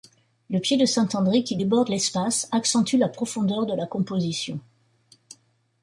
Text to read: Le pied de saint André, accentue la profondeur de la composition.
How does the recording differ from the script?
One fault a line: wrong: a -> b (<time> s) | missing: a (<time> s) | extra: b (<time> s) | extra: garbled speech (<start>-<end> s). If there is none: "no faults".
extra: qui déborde l'espace (1.4 s)